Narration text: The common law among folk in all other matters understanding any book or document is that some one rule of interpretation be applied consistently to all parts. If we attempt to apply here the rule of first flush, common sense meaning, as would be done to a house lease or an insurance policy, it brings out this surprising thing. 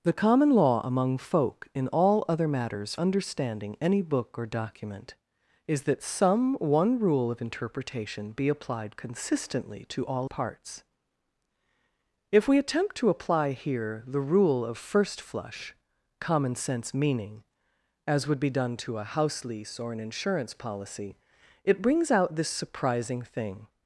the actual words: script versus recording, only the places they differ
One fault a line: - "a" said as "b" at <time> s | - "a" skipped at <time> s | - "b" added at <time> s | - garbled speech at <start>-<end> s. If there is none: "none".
none